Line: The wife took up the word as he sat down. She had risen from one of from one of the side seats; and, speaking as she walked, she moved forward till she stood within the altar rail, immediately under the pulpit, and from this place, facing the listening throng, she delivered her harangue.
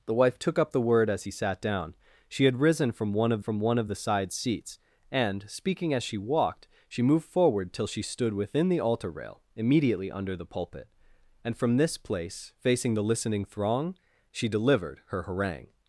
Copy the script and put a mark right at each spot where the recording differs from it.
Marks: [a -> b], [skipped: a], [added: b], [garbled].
The wife took up the word as he sat down. She had risen from one of from one of the side seats; and, speaking as she walked, she moved forward till she stood within the altar rail, immediately under the pulpit, and from this place, facing the listening throng, she delivered her harangue.